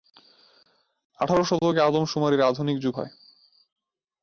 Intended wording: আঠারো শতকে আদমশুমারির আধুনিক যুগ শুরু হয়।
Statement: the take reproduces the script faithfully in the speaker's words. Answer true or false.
false